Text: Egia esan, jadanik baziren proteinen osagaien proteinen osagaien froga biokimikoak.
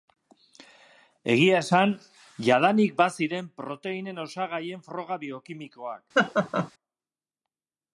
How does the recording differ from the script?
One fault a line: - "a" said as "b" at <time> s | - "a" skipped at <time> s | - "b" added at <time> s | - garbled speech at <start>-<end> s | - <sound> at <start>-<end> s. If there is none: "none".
- "proteinen osagaien" skipped at 4.8 s
- laugh at 6.1-6.7 s